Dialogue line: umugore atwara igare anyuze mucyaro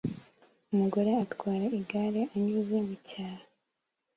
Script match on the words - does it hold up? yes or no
yes